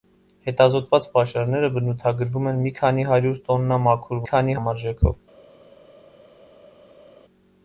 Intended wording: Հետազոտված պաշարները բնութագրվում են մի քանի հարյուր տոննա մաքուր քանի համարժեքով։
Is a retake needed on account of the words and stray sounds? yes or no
no